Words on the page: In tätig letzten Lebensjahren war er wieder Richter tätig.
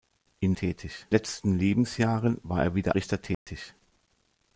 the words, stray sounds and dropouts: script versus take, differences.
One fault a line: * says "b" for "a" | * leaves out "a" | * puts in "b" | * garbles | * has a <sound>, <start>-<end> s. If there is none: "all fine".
* has a dropout, 3.3-3.5 s